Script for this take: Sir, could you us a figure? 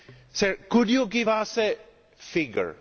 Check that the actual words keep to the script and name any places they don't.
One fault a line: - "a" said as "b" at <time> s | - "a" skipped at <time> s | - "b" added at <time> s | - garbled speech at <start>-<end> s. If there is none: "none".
- "give" added at 1.1 s